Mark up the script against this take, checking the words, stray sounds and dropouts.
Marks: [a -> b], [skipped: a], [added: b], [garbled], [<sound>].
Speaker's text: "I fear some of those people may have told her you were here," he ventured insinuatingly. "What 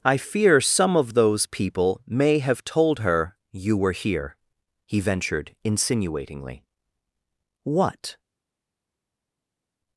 "I fear some of those people may have told her you were here," he ventured insinuatingly. "What